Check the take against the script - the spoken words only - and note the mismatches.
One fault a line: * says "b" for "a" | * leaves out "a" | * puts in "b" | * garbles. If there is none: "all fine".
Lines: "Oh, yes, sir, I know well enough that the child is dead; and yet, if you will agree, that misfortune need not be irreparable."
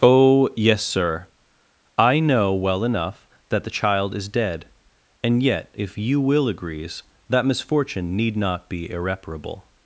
* says "agrees" for "agree"